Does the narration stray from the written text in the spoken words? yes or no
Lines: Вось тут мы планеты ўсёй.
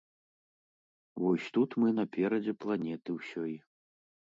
yes